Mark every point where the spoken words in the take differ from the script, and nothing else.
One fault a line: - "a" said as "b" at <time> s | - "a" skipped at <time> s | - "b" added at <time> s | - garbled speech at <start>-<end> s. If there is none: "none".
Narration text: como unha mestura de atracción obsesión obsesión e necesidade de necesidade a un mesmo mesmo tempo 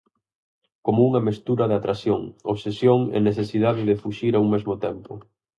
- "obsesión" skipped at 3.0 s
- "necesidade" said as "fuxir" at 4.0 s
- "mesmo" skipped at 4.7 s